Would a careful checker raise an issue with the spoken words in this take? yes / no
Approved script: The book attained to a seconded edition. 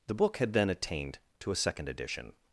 yes